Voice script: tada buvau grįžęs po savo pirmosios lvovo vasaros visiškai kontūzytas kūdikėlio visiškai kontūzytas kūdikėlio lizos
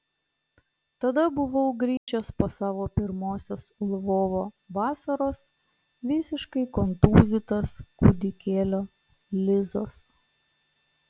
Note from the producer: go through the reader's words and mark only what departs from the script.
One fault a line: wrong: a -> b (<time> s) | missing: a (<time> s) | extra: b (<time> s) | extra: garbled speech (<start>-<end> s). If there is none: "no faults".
missing: visiškai kontūzytas kūdikėlio (8.8 s)